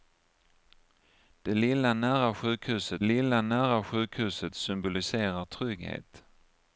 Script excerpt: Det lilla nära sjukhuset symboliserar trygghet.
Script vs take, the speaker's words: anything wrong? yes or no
yes